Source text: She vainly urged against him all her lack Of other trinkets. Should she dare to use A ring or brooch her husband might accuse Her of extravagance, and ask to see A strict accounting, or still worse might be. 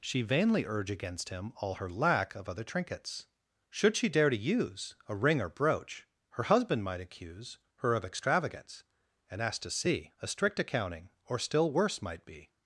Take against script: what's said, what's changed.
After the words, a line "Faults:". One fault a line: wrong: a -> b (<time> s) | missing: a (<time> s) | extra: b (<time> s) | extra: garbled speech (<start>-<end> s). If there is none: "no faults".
She vainly urge against him all her lack Of other trinkets. Should she dare to use A ring or brooch her husband might accuse Her of extravagance, and ask to see A strict accounting, or still worse might be.
Faults:
wrong: urged -> urge (0.7 s)